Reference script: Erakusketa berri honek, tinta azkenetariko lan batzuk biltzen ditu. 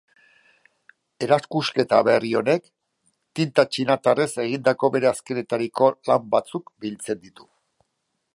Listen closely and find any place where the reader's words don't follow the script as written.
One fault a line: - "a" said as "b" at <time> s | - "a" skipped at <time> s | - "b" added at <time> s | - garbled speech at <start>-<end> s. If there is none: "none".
- "txinatarrez egindako bere" added at 3.8 s